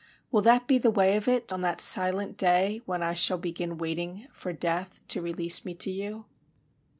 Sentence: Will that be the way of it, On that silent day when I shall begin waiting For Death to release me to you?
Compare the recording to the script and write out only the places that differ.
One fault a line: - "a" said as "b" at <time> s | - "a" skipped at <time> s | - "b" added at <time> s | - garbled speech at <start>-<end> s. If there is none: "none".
none